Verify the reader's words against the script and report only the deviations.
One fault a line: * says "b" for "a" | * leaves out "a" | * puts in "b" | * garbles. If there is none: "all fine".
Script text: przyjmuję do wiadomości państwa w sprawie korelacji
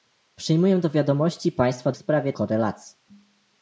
all fine